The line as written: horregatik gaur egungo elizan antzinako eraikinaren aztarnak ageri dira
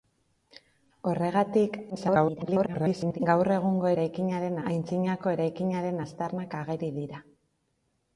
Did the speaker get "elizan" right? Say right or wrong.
wrong